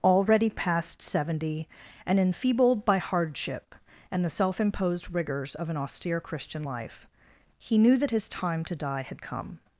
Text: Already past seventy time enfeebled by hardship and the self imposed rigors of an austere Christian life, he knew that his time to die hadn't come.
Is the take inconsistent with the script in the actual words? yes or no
yes